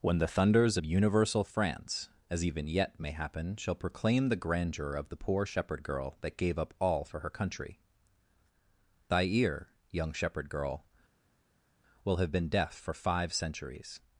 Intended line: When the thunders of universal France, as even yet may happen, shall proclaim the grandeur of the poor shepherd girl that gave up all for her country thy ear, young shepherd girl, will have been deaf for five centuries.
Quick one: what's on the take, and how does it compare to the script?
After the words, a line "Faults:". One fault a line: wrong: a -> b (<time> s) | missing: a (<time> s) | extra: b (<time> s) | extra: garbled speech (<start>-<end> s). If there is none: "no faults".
When the thunders of universal France, as even yet may happen, shall proclaim the grandeur of the poor shepherd girl that gave up all for her country thy ear, young shepherd girl, will have been deaf for five centuries.
Faults:
no faults